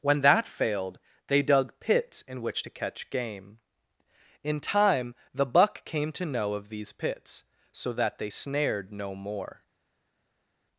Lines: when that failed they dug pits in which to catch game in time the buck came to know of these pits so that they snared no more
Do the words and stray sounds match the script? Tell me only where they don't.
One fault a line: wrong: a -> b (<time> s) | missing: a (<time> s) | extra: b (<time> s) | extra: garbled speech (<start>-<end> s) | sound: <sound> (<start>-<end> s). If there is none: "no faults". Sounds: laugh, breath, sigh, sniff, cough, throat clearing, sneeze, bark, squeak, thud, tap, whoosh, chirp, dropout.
no faults